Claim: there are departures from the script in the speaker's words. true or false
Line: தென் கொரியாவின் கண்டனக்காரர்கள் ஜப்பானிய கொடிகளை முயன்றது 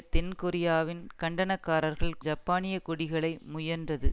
false